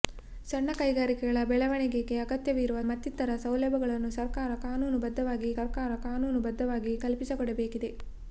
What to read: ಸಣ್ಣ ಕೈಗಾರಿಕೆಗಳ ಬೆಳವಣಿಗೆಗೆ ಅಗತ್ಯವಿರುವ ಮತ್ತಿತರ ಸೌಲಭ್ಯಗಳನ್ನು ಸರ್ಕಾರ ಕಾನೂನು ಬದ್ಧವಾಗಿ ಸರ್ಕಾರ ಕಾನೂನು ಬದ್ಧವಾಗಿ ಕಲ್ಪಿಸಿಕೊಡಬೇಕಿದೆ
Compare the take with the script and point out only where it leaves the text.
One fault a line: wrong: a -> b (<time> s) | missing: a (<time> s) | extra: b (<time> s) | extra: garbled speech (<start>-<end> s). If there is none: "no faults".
no faults